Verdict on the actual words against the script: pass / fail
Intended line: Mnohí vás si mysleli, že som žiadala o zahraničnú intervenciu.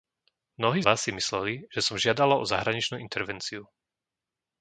pass